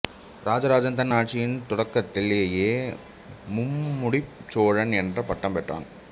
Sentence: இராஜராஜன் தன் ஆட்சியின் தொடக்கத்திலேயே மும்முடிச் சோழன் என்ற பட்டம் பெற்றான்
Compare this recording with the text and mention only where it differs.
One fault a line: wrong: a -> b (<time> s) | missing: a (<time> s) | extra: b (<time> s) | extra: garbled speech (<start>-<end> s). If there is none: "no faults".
no faults